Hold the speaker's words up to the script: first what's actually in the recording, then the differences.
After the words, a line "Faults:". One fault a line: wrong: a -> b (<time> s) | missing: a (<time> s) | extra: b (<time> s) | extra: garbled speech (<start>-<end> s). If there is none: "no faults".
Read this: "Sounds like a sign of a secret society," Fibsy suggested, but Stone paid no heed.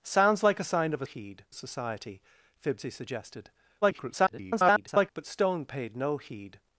"Sounds like a sign of a heed society," Fibsy suggested, [garbled] but Stone paid no heed.
Faults:
wrong: secret -> heed (1.0 s)
extra: garbled speech (3.8-5.1 s)